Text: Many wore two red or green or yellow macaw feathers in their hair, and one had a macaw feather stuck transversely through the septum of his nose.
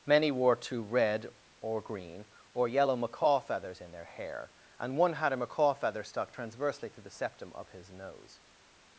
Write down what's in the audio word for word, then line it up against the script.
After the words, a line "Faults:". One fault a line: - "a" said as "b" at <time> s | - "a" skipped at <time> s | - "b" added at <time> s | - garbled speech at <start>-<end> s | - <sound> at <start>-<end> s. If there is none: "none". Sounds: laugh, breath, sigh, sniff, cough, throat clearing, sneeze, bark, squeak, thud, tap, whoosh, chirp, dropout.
Many wore two red or green or yellow macaw feathers in their hair, and one had a macaw feather stuck transversely to the septum of his nose.
Faults:
- "through" said as "to" at 6.9 s